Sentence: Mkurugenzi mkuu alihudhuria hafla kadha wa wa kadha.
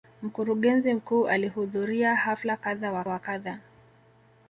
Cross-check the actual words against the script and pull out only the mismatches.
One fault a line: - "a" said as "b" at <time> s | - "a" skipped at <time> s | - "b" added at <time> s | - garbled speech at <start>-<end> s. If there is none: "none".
none